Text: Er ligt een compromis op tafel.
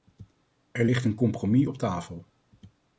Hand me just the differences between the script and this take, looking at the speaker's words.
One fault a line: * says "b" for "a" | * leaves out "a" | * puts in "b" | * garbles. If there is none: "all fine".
all fine